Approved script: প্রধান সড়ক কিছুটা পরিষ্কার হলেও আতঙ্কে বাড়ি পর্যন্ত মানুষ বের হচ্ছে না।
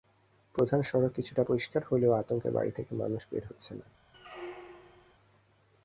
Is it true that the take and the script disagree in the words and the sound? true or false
true